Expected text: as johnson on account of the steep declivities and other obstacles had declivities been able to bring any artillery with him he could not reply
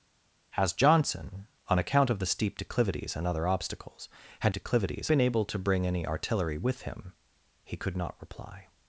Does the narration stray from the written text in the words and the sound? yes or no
no